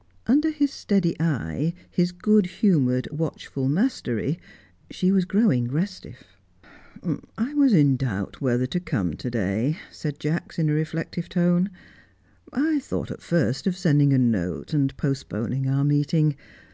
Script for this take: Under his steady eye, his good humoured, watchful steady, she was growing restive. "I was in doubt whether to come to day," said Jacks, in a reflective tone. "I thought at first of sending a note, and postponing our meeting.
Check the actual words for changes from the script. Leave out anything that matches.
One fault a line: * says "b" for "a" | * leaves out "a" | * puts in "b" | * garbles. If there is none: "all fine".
* says "mastery" for "steady"